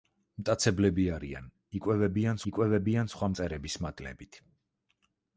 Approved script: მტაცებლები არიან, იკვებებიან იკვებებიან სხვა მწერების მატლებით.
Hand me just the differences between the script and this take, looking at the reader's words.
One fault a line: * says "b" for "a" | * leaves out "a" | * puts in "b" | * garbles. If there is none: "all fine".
all fine